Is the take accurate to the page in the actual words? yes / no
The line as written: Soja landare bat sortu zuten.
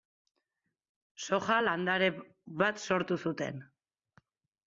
yes